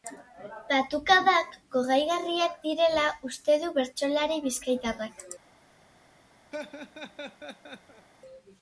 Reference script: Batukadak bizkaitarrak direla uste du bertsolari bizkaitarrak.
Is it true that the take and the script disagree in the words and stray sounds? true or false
true